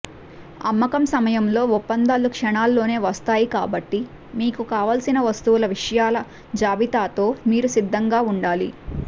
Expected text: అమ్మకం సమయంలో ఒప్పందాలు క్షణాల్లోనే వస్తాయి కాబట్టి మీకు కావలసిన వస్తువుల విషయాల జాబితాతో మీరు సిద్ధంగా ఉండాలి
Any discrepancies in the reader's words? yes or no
no